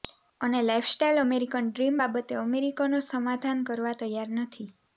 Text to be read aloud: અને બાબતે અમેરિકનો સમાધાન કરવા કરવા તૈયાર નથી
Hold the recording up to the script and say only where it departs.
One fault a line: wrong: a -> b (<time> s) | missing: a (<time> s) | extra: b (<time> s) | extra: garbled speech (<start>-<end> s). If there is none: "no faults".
extra: લાઇફસ્ટાઇલ અમેરિકન ડ્રીમ (0.6 s)
missing: કરવા (4.0 s)